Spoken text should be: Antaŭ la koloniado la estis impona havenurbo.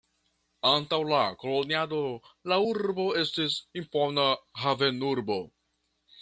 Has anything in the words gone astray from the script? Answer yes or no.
yes